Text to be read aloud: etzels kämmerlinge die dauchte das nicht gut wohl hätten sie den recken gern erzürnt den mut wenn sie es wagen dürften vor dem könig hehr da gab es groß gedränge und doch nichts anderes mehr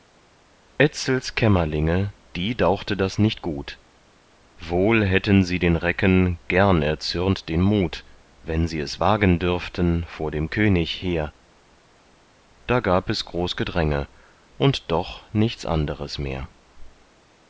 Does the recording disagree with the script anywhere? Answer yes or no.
no